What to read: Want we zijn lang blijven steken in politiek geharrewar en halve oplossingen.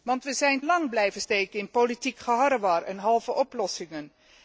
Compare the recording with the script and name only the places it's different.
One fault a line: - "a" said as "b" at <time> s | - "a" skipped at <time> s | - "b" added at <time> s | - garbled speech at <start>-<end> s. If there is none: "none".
none